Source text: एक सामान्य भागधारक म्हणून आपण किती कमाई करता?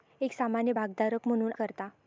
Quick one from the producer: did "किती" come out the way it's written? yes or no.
no